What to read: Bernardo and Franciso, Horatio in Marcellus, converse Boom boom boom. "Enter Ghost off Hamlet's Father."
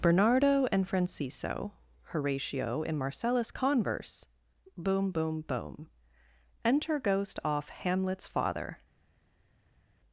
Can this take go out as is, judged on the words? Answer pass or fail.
pass